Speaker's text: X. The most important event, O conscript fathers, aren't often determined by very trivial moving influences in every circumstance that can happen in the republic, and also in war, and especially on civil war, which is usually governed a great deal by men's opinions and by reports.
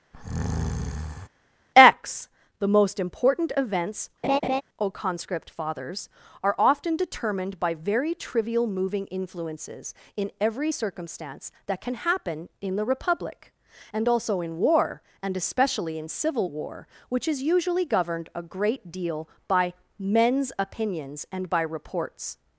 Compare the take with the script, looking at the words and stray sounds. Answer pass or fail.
fail